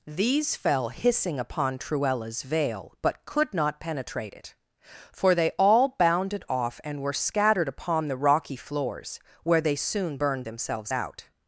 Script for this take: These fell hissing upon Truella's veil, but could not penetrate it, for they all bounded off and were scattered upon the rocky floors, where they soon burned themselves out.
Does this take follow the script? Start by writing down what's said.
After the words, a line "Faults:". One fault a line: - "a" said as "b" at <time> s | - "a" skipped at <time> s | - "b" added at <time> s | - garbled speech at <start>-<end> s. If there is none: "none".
These fell hissing upon Truella's veil, but could not penetrate it, for they all bounded off and were scattered upon the rocky floors, where they soon burned themselves out.
Faults:
none